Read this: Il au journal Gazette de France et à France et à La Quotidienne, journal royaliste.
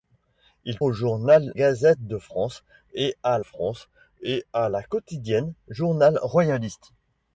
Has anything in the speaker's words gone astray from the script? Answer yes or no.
no